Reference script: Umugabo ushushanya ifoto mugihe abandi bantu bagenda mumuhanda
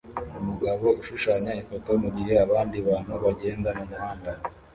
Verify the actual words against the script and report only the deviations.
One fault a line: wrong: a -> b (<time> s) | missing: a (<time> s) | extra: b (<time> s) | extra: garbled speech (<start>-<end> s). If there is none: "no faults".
no faults